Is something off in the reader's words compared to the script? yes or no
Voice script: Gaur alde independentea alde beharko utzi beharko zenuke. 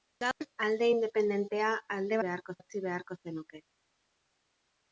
no